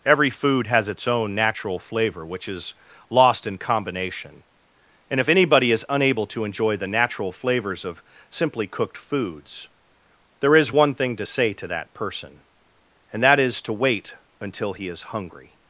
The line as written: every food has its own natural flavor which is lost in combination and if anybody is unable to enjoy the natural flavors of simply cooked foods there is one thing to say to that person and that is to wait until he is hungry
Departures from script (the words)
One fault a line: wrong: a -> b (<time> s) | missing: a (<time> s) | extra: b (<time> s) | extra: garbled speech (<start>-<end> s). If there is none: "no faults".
no faults